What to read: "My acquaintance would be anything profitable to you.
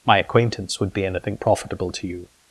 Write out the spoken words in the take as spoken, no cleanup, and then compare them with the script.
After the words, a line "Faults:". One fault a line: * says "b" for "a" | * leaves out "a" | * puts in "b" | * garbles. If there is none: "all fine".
"My acquaintance would be anything profitable to you.
Faults:
all fine